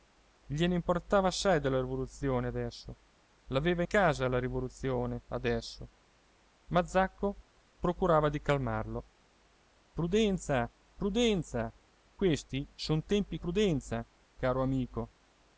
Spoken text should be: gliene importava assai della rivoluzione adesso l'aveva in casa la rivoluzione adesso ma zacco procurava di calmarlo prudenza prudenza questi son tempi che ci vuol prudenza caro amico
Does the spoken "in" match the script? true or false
false